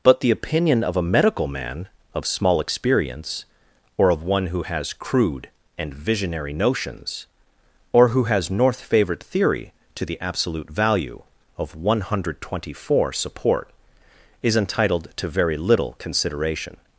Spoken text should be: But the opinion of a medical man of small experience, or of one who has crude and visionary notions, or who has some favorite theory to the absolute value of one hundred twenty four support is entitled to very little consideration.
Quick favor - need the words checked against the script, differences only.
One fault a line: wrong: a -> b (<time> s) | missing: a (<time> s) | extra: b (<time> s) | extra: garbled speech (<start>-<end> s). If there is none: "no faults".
wrong: some -> north (8.5 s)